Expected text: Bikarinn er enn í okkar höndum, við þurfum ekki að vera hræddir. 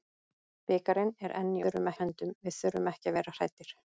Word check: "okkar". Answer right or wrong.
wrong